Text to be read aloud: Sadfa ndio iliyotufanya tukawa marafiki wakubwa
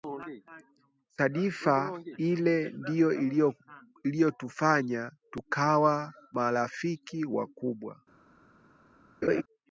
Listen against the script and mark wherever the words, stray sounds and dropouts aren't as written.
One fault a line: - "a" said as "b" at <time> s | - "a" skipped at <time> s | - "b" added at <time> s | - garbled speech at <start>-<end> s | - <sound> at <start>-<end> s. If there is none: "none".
- "ile" added at 2.2 s
- laugh at 9.2-9.4 s